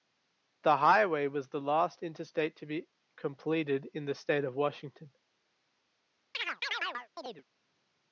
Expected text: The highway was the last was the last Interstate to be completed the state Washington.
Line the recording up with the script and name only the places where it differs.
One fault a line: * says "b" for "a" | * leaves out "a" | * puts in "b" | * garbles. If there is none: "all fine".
* leaves out "was the last"
* puts in "in"
* puts in "of"